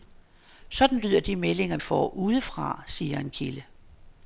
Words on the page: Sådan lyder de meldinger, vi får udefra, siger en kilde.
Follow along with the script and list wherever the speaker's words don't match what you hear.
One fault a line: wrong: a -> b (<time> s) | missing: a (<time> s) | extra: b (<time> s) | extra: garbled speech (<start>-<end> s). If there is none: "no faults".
missing: vi (1.8 s)